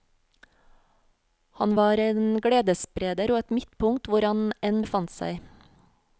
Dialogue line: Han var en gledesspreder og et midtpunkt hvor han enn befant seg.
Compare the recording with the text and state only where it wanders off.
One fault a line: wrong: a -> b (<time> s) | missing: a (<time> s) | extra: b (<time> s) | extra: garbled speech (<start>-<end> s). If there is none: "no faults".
no faults